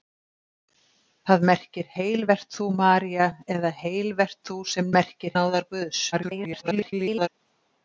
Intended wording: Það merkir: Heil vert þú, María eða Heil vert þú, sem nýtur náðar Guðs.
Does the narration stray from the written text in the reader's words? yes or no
yes